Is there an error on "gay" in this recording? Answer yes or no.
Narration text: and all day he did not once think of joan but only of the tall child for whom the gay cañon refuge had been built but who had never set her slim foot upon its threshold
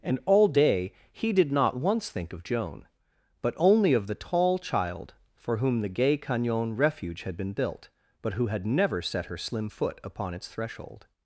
no